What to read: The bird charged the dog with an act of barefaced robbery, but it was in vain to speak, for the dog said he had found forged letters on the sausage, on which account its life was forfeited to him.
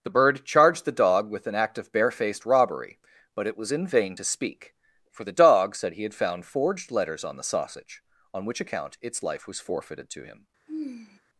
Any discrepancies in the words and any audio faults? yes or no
yes